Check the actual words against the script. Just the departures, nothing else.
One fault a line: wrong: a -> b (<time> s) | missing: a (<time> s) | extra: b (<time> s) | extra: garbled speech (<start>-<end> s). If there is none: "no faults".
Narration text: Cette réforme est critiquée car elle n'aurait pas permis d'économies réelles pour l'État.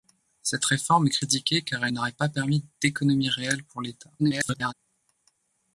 extra: garbled speech (4.2-4.7 s)